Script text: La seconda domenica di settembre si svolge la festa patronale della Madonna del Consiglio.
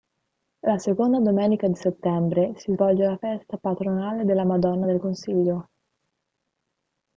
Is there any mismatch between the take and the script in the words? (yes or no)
no